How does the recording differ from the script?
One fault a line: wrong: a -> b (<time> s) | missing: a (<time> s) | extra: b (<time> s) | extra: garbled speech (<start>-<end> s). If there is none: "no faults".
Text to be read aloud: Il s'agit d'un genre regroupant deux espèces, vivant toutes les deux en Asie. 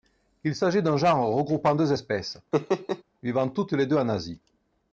no faults